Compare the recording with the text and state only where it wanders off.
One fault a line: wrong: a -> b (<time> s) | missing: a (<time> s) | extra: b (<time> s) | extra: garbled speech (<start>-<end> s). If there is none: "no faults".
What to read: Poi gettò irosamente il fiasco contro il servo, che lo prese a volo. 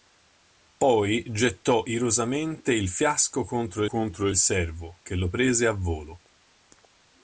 extra: contro (3.8 s)